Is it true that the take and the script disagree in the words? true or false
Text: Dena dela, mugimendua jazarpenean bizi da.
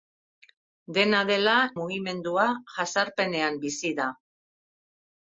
false